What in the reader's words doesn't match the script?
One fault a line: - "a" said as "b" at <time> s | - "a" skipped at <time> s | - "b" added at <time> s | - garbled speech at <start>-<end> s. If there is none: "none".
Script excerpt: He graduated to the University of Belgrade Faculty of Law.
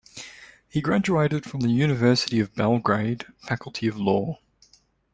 - "to" said as "from" at 1.4 s